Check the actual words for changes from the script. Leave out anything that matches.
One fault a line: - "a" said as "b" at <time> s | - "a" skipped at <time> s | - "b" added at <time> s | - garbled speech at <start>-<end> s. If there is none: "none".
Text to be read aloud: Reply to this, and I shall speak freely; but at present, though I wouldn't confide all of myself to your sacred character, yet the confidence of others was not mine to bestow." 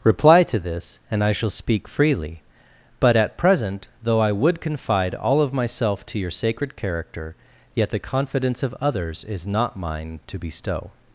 - "wouldn't" said as "would" at 4.3 s
- "was" said as "is" at 9.2 s